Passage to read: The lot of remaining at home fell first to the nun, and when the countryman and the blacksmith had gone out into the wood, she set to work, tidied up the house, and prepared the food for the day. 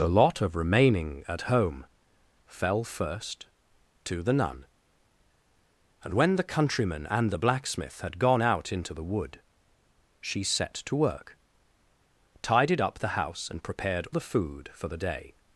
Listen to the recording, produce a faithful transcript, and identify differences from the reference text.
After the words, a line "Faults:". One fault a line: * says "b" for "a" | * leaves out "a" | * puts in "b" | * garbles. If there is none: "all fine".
The lot of remaining at home fell first to the nun, and when the countryman and the blacksmith had gone out into the wood, she set to work, tidied up the house, and prepared the food for the day.
Faults:
all fine